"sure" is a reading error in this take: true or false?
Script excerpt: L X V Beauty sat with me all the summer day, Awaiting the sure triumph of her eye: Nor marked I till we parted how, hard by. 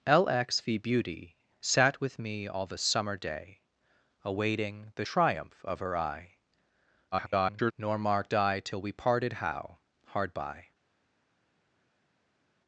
true